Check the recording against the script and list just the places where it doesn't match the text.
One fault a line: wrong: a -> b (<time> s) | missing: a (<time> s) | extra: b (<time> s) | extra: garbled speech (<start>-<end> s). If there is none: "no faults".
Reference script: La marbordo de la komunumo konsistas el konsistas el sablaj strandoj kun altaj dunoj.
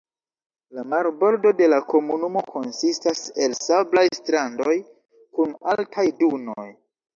missing: konsistas el (3.6 s)